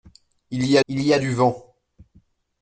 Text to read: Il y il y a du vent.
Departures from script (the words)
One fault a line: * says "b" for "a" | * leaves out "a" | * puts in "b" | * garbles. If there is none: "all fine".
all fine